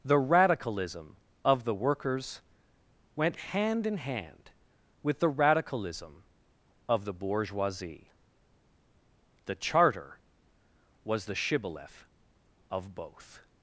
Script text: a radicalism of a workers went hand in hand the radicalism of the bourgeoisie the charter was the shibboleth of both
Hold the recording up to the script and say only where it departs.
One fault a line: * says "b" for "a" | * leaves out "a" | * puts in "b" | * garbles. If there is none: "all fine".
* says "the" for "a"
* says "the" for "a"
* puts in "with"